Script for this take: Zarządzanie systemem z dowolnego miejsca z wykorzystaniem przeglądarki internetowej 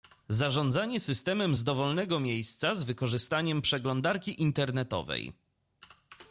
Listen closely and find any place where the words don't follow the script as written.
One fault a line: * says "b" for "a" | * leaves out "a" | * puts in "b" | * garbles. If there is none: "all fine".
all fine